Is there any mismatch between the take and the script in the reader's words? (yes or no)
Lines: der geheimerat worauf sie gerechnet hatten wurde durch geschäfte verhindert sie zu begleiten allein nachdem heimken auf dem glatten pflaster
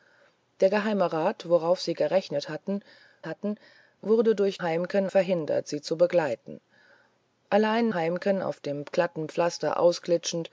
yes